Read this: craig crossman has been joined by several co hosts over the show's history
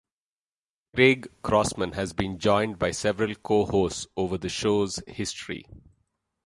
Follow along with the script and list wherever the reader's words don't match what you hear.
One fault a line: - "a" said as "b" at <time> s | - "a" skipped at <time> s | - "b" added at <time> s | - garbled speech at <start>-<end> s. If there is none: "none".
none